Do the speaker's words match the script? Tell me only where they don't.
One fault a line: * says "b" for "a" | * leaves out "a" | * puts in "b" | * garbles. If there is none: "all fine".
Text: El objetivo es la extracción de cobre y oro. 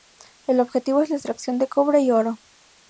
all fine